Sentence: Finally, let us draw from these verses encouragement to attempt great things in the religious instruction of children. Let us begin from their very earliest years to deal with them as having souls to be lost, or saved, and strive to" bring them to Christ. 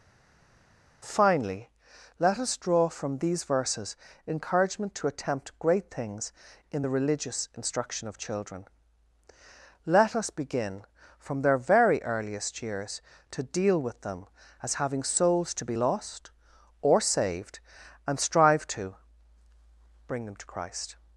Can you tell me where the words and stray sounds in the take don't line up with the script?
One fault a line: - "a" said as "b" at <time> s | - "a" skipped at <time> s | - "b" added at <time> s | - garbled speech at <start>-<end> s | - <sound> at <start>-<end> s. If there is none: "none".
none